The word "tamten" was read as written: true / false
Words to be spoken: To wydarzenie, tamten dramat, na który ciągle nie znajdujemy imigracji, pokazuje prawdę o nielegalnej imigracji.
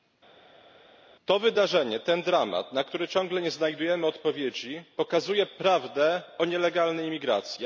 false